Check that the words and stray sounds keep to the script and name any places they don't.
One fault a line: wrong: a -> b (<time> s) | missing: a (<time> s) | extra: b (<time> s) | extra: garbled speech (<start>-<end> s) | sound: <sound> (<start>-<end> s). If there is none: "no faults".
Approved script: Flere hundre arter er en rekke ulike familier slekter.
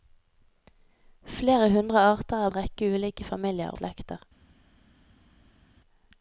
no faults